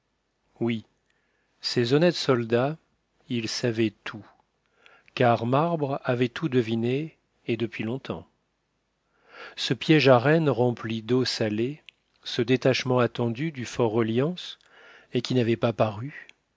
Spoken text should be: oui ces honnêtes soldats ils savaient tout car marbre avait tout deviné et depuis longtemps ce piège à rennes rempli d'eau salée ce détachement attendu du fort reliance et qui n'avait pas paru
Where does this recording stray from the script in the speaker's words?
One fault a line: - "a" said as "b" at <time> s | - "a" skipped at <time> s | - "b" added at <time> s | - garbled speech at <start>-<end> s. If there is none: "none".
none